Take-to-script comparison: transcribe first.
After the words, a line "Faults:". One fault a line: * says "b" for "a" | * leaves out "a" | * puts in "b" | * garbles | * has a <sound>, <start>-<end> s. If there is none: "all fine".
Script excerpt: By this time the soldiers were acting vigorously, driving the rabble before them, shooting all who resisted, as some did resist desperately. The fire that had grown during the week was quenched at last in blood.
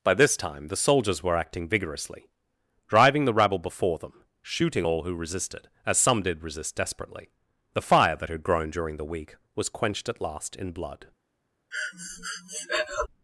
By this time the soldiers were acting vigorously, driving the rabble before them, shooting all who resisted, as some did resist desperately. The fire that had grown during the week was quenched at last in blood.
Faults:
* has a breath, 11.7-13.1 s